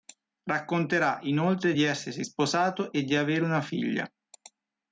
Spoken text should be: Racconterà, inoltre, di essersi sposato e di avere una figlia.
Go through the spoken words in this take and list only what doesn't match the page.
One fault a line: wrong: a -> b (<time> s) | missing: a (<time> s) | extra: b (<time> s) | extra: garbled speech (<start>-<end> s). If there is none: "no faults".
no faults